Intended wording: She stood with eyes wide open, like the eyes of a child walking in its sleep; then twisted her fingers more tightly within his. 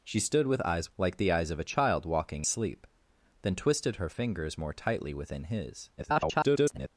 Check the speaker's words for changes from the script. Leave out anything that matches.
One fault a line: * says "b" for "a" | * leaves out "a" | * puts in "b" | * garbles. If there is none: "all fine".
* leaves out "wide open"
* leaves out "in its"
* garbles